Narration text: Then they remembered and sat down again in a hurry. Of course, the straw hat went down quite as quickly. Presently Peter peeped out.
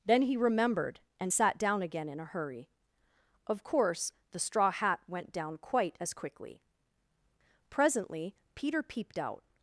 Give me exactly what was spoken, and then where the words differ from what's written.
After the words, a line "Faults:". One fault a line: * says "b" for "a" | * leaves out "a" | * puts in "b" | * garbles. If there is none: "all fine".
Then he remembered and sat down again in a hurry. Of course, the straw hat went down quite as quickly. Presently Peter peeped out.
Faults:
* says "he" for "they"